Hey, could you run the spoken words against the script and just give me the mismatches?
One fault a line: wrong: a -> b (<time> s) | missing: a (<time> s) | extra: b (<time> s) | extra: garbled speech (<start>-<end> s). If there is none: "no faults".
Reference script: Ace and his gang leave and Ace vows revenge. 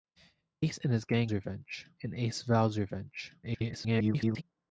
wrong: leave -> revenge (1.3 s)
extra: garbled speech (3.4-4.4 s)